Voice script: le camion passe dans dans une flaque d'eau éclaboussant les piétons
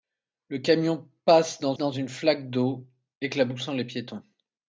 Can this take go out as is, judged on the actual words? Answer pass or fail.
pass